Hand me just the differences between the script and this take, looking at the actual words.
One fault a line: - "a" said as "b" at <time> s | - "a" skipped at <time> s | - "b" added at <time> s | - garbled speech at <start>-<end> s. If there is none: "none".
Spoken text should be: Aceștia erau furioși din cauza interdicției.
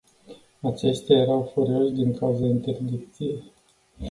none